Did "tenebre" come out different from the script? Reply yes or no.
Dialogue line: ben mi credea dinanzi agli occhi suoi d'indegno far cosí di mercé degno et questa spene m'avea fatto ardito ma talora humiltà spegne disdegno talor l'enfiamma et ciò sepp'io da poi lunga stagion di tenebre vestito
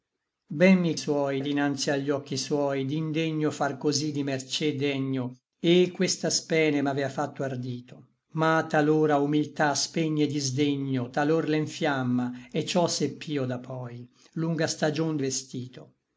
yes